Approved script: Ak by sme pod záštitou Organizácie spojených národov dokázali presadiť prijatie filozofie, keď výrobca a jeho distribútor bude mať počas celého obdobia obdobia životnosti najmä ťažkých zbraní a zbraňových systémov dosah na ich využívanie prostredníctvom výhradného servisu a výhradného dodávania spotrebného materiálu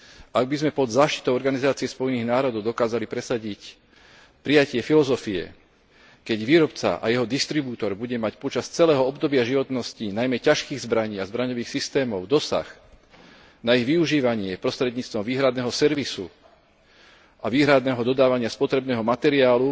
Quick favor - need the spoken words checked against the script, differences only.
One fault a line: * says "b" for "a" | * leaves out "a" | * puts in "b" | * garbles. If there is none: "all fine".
* leaves out "obdobia"